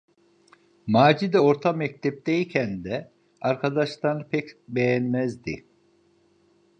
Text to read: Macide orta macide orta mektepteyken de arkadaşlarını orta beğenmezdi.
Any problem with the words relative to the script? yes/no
yes